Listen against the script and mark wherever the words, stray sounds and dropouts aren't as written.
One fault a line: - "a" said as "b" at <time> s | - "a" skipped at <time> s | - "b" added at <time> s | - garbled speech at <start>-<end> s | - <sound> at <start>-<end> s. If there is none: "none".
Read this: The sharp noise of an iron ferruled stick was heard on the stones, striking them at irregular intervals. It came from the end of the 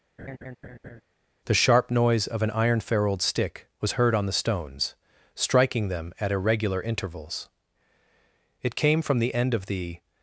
- laugh at 0.2-1.0 s